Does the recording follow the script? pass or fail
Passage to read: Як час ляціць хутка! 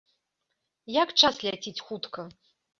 pass